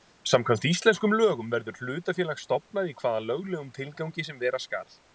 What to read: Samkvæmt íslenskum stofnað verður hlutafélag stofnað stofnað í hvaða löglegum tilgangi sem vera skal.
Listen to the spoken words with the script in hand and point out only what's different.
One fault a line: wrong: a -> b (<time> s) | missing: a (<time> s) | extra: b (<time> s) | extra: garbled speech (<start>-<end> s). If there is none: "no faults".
wrong: stofnað -> lögum (1.2 s)
missing: stofnað (2.9 s)